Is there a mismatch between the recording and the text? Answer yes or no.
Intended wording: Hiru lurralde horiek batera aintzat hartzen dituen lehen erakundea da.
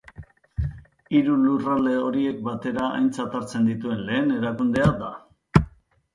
no